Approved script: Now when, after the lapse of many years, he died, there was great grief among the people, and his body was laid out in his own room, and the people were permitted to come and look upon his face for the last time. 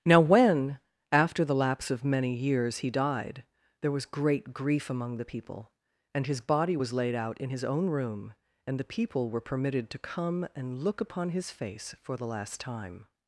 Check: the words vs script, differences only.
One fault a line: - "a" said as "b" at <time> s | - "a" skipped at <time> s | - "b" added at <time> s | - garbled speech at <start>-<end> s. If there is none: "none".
none